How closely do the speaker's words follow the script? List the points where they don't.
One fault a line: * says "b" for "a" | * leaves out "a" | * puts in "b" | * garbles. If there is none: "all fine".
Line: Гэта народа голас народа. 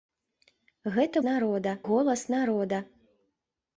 all fine